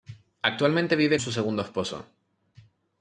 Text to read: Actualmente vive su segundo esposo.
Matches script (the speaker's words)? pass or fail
pass